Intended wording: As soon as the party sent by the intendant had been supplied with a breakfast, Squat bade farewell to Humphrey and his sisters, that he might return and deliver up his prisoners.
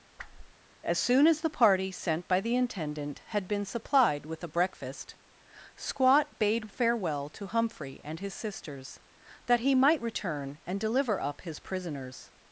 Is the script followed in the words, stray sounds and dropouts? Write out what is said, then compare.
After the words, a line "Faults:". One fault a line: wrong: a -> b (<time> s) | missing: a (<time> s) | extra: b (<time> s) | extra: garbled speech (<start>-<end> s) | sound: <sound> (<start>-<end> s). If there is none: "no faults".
As soon as the party sent by the intendant had been supplied with a breakfast, Squat bade farewell to Humphrey and his sisters, that he might return and deliver up his prisoners.
Faults:
sound: whoosh (0.2-0.5 s)